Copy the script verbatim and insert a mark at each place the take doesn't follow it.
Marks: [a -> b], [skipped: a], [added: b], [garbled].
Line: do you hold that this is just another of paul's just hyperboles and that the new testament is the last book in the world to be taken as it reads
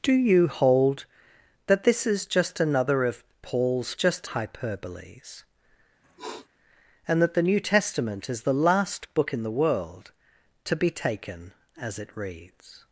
do you hold that this is just another of paul's just hyperboles and that the new testament is the last book in the world to be taken as it reads